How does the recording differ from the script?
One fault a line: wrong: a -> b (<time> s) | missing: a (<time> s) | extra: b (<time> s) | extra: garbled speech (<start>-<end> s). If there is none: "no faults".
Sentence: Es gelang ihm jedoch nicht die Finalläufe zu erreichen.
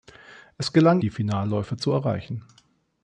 missing: ihm jedoch nicht (1.0 s)